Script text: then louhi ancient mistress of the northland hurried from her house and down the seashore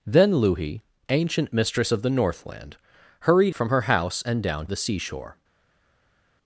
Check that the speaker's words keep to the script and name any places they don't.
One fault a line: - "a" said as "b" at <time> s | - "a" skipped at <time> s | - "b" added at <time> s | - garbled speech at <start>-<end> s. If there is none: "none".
none